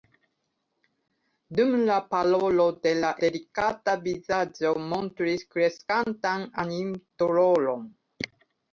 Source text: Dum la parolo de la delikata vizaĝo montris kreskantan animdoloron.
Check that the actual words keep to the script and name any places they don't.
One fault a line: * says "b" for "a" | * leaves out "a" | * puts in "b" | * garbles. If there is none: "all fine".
all fine